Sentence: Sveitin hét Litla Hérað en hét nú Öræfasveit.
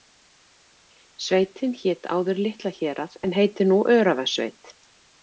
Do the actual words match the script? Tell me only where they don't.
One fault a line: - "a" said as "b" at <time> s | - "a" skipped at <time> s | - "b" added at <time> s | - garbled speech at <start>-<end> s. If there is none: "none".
- "áður" added at 2.2 s
- "hét" said as "heitir" at 3.4 s